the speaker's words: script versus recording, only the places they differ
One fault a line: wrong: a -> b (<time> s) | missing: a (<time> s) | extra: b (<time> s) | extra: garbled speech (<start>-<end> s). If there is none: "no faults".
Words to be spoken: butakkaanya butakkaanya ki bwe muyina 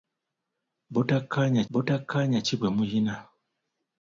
no faults